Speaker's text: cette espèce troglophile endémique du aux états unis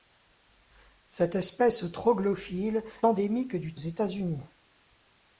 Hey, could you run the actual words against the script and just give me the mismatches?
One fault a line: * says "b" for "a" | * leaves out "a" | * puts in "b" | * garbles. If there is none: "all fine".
all fine